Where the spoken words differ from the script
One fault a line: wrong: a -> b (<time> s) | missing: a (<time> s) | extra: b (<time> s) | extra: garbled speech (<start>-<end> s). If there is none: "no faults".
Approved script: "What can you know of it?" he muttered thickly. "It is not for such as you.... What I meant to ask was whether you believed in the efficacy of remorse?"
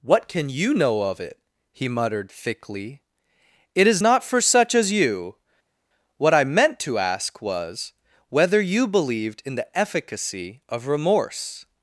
no faults